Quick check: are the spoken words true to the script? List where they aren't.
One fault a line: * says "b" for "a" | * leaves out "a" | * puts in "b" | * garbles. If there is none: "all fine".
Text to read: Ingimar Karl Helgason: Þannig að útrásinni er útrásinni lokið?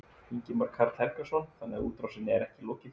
* says "ekki" for "útrásinni"